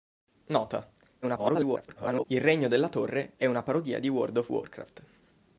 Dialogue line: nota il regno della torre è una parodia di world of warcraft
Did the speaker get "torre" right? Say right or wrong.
right